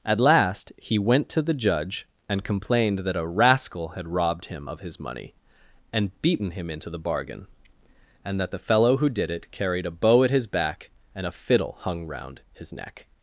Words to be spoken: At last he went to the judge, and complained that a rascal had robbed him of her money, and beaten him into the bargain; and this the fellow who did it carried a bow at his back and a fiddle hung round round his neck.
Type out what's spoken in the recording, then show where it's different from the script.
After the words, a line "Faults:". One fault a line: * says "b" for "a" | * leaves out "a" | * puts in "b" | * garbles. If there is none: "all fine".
At last he went to the judge, and complained that a rascal had robbed him of his money, and beaten him into the bargain; and that the fellow who did it carried a bow at his back and a fiddle hung round his neck.
Faults:
* says "his" for "her"
* says "that" for "this"
* leaves out "round"